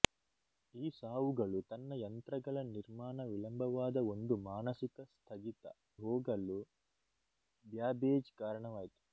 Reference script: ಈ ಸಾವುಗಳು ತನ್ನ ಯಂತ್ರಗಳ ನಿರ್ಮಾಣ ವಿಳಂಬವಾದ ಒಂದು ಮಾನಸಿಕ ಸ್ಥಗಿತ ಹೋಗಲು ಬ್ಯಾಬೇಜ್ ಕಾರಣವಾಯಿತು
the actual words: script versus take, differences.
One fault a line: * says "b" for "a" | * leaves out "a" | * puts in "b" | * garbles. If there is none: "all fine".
all fine